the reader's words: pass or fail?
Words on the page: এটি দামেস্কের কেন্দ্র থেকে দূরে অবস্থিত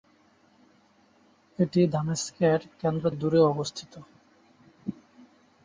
fail